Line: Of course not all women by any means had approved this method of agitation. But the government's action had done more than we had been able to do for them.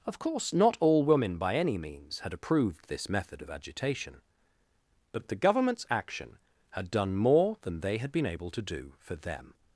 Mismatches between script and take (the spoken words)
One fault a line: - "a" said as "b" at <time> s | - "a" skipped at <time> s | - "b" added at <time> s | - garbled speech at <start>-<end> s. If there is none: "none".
- "we" said as "they" at 7.8 s